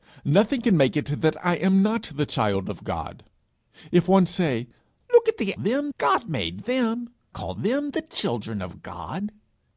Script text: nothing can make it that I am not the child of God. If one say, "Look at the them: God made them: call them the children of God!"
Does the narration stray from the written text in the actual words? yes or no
no